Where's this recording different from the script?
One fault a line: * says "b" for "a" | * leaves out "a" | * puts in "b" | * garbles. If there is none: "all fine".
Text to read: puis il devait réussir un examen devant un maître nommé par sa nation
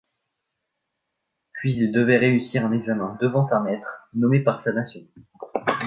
all fine